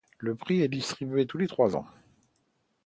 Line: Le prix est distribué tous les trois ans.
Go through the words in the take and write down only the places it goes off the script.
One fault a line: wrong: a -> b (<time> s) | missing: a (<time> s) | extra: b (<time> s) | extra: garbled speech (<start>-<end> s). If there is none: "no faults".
no faults